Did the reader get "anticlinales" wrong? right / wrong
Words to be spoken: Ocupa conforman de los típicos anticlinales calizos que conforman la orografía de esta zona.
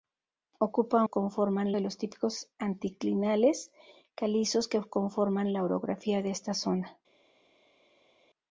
right